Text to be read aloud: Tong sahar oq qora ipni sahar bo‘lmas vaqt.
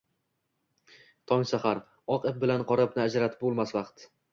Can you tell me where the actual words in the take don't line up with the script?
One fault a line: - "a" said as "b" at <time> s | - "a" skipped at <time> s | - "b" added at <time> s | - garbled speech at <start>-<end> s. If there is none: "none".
- "ip bilan" added at 2.3 s
- "sahar" said as "ajratib" at 3.1 s